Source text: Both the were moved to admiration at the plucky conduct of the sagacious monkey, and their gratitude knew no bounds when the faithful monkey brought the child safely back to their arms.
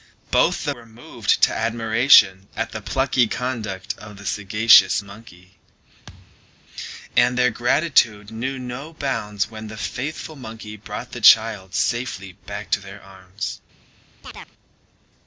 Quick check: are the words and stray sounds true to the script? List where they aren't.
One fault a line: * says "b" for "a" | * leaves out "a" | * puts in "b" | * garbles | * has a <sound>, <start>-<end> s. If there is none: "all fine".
* has a thud, 6.1-6.5 s
* has a chirp, 14.2-14.5 s